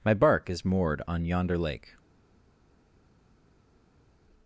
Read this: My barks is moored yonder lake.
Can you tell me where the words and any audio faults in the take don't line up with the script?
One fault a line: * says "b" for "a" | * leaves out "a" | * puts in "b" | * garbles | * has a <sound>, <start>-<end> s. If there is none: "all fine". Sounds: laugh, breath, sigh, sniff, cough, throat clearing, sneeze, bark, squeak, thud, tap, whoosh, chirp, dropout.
* says "bark" for "barks"
* puts in "on"